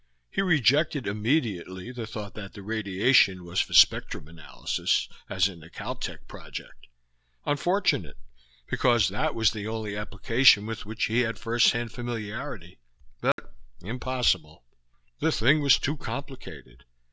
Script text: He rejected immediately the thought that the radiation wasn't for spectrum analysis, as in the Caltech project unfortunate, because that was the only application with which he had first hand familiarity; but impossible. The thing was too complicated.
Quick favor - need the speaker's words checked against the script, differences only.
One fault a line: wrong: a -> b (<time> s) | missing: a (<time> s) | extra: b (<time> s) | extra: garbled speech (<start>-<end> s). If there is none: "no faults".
wrong: wasn't -> was (3.5 s)